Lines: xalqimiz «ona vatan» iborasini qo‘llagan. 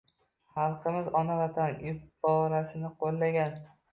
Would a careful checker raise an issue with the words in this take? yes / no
no